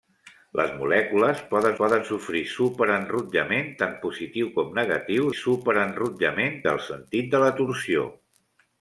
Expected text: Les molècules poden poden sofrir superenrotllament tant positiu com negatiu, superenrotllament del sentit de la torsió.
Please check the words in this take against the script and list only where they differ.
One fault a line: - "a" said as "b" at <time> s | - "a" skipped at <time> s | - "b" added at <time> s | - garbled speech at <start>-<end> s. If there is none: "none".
none